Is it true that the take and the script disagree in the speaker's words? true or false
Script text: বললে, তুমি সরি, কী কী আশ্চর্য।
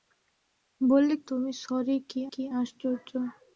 false